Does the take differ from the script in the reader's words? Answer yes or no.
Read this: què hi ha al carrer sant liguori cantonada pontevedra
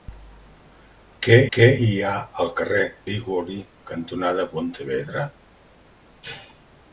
yes